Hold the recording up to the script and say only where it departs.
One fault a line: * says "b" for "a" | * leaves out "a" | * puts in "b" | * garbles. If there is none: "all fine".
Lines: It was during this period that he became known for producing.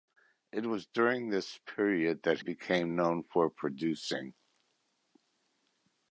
* leaves out "he"